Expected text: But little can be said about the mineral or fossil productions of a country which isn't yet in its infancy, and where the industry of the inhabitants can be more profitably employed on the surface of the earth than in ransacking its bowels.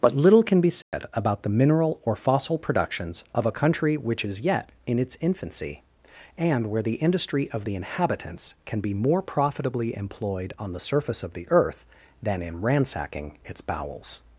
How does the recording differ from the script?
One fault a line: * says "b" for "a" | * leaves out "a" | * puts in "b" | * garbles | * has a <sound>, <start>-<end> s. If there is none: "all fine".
* has a dropout, 0.8-0.9 s
* says "is" for "isn't"